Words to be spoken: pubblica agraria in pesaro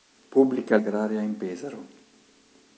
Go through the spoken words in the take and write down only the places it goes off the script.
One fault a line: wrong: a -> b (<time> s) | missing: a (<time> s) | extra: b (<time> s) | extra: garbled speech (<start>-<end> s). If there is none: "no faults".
no faults